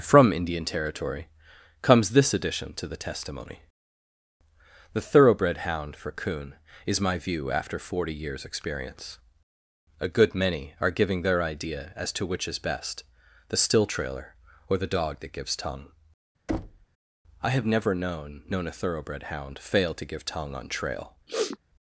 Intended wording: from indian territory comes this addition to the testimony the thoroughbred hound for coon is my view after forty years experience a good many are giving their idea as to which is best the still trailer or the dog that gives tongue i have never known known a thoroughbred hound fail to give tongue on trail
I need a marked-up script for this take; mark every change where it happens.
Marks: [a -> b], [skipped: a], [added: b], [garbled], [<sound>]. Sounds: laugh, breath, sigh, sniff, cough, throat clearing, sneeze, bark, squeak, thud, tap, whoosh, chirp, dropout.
from indian territory comes this addition to the testimony the thoroughbred hound for coon is my view after forty years experience a good many are giving their idea as to which is best the still trailer or the dog that gives tongue [thud] i have never known known a thoroughbred hound fail to give tongue on trail [sniff]